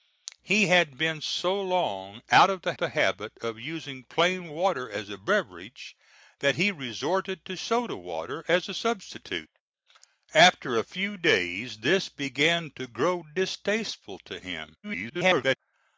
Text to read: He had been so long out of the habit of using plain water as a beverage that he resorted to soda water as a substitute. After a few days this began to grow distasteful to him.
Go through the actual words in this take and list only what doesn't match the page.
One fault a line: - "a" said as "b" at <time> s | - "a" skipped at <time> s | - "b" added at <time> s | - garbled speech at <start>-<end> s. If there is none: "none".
- "the" added at 2.8 s
- garbled speech at 14.8-15.6 s